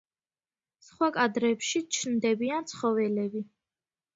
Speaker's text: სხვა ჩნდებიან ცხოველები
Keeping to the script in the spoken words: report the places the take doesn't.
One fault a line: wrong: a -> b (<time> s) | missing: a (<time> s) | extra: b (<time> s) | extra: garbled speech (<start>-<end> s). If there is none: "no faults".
extra: კადრებში (1.2 s)